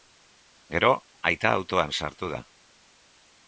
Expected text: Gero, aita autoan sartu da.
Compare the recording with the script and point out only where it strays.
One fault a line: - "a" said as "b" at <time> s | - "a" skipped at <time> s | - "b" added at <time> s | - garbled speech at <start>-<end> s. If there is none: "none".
none